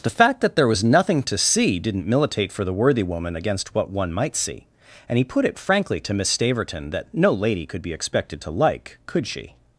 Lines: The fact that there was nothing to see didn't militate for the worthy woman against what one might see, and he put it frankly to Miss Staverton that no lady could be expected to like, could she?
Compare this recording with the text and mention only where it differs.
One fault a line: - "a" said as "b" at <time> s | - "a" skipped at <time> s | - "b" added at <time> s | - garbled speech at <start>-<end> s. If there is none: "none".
none